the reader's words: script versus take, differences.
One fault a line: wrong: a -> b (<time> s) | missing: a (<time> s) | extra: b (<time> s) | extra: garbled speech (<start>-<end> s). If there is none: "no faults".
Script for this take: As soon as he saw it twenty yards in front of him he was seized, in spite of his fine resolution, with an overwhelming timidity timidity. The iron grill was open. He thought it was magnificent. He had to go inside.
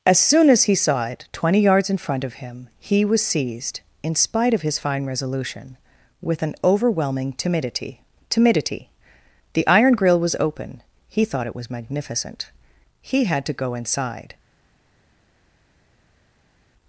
no faults